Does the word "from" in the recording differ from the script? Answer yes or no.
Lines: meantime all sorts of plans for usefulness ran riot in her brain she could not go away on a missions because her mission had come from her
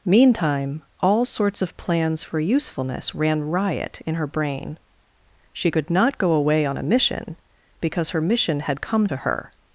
yes